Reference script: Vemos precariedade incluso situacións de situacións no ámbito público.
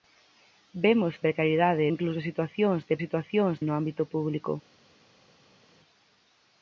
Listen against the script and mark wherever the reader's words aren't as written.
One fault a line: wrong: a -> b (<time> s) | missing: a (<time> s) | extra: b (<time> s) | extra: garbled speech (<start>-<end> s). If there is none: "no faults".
no faults